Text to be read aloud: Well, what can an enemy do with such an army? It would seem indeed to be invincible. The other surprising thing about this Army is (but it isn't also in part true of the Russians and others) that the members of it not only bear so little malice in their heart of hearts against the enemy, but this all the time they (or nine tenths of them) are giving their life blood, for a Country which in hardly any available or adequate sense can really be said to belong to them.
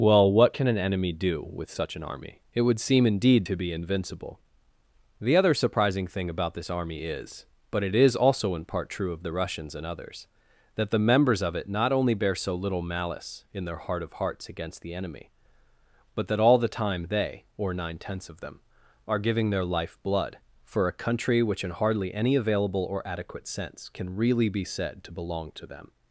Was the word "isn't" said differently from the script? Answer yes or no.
yes